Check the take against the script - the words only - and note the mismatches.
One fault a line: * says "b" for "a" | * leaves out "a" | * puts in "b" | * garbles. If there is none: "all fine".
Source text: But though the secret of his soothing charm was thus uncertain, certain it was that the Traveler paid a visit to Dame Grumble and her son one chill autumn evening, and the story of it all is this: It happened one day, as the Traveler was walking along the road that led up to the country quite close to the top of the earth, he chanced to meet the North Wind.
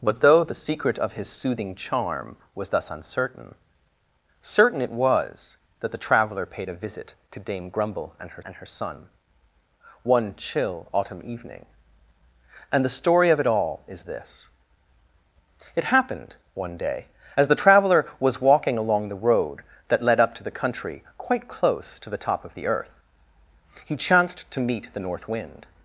* puts in "and her"